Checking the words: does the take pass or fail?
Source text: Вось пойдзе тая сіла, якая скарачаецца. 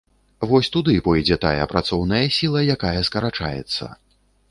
fail